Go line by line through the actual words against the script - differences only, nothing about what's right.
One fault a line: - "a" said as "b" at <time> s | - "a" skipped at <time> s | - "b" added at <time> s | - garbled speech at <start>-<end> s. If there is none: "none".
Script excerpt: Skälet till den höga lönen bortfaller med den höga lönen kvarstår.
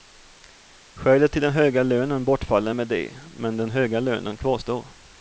- "det men" added at 2.9 s